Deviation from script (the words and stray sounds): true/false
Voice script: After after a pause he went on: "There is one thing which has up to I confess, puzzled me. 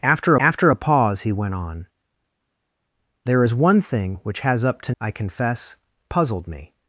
false